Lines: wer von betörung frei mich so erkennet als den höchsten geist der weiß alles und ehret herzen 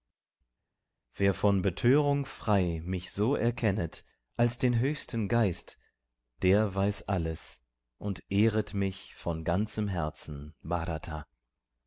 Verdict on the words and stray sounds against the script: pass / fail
fail